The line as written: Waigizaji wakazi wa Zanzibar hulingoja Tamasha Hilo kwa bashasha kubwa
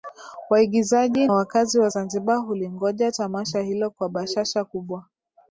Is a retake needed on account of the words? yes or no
no